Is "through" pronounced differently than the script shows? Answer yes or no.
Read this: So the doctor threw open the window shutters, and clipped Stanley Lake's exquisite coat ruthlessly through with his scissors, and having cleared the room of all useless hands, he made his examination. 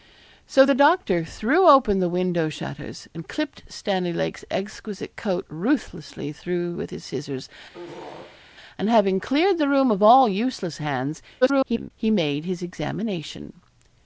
no